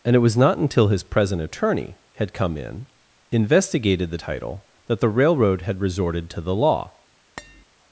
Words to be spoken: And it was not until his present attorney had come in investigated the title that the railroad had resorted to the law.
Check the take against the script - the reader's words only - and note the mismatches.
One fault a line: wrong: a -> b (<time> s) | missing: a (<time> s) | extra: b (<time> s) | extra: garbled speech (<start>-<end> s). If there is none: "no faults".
no faults